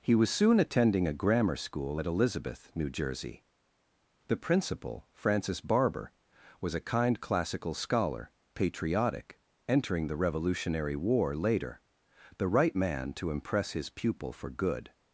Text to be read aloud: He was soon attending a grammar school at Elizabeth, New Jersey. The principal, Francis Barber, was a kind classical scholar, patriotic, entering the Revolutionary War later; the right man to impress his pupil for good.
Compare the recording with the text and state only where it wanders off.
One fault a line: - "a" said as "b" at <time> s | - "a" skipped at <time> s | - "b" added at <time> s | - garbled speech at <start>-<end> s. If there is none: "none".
none